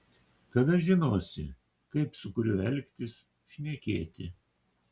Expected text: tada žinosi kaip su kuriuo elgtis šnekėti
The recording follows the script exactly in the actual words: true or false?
true